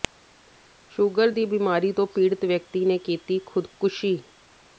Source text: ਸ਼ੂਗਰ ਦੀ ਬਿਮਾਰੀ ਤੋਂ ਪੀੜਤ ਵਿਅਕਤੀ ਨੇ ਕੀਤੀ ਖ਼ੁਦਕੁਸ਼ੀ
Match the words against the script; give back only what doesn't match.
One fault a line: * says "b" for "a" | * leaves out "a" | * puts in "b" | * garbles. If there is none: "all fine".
all fine